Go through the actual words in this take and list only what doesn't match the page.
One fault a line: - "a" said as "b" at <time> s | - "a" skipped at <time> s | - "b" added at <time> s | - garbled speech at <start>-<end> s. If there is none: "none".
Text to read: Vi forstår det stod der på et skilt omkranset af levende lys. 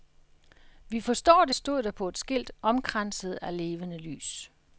none